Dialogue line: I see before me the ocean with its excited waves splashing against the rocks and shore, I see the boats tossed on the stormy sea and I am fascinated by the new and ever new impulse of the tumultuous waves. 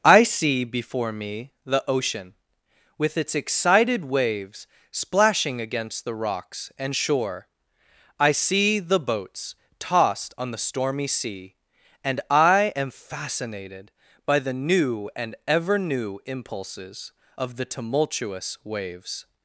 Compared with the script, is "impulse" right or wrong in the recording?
wrong